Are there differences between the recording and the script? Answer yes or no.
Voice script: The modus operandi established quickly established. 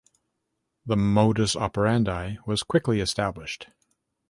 yes